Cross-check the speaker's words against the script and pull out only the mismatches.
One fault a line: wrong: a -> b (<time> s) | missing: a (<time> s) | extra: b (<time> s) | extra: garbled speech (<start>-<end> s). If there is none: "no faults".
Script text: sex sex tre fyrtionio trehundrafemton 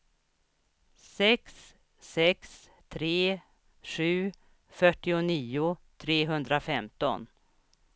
extra: sju (3.8 s)